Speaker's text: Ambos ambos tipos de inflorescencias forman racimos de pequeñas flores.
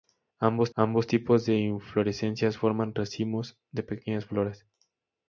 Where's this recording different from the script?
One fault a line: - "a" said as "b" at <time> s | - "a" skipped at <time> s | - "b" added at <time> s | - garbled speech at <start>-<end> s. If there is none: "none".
none